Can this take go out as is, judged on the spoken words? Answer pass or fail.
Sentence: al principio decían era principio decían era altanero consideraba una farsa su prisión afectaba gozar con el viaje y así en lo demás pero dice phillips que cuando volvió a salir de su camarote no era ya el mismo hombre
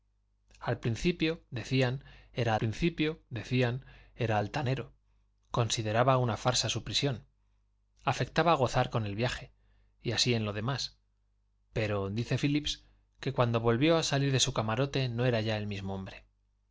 pass